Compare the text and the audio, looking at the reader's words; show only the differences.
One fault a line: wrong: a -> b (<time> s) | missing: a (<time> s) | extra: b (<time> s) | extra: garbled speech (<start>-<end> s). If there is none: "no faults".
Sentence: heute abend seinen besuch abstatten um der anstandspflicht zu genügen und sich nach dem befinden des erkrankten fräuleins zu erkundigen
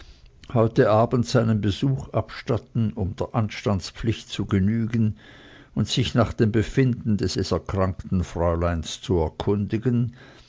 extra: des (7.3 s)